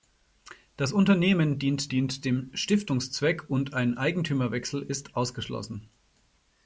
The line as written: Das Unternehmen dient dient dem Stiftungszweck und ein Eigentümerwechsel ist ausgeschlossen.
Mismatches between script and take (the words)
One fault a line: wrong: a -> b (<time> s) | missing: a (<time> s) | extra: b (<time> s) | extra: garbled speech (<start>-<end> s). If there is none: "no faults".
no faults